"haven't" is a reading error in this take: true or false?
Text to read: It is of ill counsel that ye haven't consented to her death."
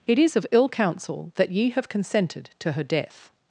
true